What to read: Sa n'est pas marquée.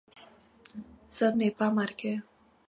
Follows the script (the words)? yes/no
yes